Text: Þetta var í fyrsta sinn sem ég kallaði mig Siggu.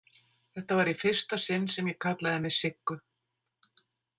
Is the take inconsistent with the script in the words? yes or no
no